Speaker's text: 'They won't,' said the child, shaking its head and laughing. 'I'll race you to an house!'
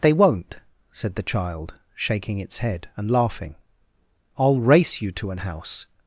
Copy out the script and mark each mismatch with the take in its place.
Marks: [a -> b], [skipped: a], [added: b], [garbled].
'They won't,' said the child, shaking its head and laughing. 'I'll race you to an house!'